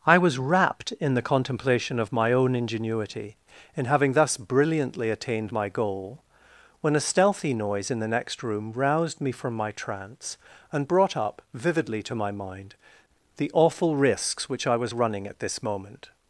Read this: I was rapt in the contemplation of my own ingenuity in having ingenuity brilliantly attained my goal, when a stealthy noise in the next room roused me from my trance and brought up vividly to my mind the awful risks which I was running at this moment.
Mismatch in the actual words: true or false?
true